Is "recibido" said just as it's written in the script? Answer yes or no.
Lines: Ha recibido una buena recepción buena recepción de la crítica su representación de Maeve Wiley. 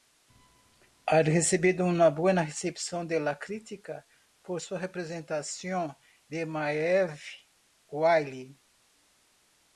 yes